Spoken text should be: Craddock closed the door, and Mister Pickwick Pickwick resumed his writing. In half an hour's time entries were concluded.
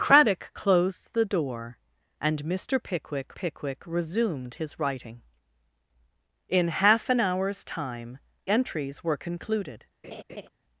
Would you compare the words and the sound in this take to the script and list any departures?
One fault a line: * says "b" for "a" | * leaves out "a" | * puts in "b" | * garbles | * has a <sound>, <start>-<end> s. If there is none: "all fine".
* has a laugh, 10.0-10.5 s